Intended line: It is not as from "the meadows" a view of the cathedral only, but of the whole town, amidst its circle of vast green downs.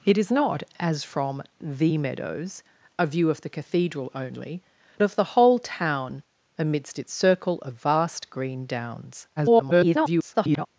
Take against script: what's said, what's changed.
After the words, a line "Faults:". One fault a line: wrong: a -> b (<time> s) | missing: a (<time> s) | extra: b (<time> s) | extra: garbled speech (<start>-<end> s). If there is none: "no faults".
It is not as from "the meadows" a view of the cathedral only, of the whole town, amidst its circle of vast green downs. [garbled]
Faults:
missing: but (4.6 s)
extra: garbled speech (9.4-10.7 s)